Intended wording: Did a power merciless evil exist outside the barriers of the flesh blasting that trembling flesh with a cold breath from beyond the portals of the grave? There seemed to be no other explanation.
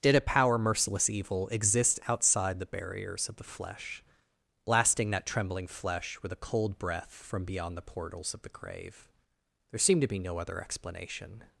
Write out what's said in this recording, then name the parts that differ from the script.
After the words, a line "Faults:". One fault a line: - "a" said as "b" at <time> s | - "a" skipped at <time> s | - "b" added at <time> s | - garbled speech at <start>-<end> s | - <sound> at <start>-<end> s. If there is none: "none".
Did a power merciless evil exist outside the barriers of the flesh blasting that trembling flesh with a cold breath from beyond the portals of the grave? There seemed to be no other explanation.
Faults:
none